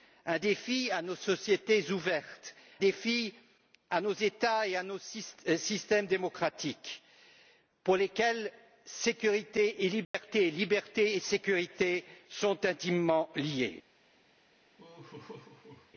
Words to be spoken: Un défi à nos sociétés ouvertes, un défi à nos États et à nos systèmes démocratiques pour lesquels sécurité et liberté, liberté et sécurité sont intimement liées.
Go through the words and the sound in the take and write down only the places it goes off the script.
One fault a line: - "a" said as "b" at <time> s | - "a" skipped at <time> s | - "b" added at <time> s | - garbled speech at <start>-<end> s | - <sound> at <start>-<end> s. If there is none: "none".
- "un" skipped at 2.5 s
- dropout at 10.0-10.1 s
- laugh at 14.8-15.9 s